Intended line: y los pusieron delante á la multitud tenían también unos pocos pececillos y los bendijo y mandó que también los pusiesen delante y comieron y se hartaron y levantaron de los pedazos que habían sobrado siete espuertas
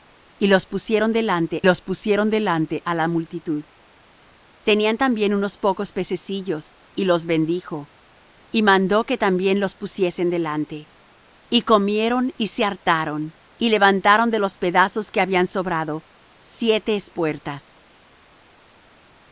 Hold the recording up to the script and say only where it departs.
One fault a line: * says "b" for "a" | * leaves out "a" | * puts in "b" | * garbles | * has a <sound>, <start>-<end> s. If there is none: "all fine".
* puts in "los pusieron delante"